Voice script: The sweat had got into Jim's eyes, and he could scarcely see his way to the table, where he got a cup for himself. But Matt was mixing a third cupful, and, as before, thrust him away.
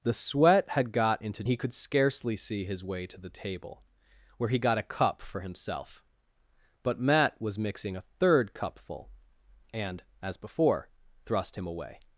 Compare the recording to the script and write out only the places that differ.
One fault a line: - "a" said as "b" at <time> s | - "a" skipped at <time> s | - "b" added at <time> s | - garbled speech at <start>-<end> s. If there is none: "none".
- "Jim's eyes and" skipped at 1.4 s